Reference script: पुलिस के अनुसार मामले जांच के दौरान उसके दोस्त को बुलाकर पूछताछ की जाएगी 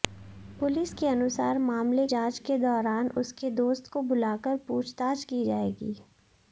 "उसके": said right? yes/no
yes